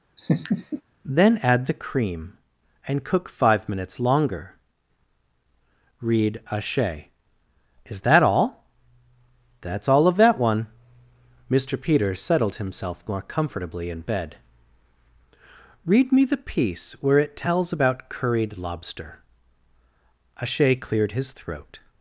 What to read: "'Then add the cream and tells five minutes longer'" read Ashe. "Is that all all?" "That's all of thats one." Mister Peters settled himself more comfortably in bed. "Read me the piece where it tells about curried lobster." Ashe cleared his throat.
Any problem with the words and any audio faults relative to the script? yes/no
yes